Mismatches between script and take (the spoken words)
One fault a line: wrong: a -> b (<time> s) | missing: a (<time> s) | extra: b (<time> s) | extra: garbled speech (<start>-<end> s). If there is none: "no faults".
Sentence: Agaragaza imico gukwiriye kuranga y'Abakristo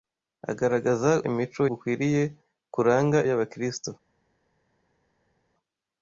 no faults